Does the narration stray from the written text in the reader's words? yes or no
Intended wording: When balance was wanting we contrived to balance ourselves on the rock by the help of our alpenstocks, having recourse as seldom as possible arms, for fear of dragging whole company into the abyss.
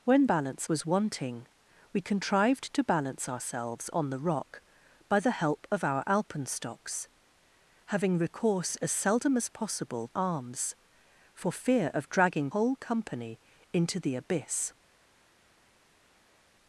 no